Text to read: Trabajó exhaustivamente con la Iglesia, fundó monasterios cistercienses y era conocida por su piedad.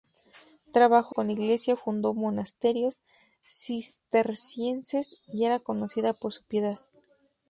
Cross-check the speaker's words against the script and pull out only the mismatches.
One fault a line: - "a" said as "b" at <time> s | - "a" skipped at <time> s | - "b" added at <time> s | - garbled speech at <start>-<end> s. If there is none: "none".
- "exhaustivamente" skipped at 1.1 s